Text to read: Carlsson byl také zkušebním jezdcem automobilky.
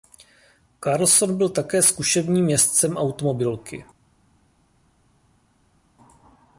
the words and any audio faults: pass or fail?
pass